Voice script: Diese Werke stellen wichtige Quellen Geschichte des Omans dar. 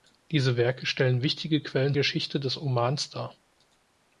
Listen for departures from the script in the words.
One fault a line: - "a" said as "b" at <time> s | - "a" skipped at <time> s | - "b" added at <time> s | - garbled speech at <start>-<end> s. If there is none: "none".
none